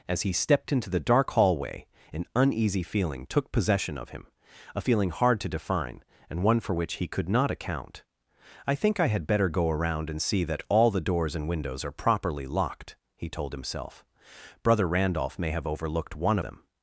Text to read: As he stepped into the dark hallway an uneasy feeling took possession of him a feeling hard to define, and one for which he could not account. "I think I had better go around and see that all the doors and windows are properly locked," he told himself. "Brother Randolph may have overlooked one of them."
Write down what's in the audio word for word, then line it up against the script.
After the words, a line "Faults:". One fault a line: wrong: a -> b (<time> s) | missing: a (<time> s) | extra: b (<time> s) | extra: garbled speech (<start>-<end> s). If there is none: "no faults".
As he stepped into the dark hallway an uneasy feeling took possession of him a feeling hard to define, and one for which he could not account. "I think I had better go around and see that all the doors and windows are properly locked," he told himself. "Brother Randolph may have overlooked one them."
Faults:
missing: of (16.4 s)